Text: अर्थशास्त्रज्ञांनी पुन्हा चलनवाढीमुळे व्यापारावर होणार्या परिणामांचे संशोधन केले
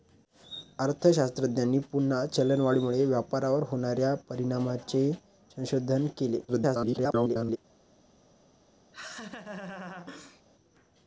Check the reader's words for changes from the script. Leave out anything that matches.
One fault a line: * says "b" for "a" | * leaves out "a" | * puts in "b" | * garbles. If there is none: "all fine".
* garbles